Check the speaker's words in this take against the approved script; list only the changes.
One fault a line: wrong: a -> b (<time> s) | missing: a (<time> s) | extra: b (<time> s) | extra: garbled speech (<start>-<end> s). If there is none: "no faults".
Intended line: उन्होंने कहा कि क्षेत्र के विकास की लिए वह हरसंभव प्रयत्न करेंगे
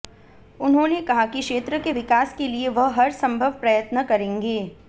wrong: की -> के (2.4 s)